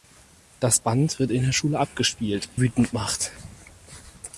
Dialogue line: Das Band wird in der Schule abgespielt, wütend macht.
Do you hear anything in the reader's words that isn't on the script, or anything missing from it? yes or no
no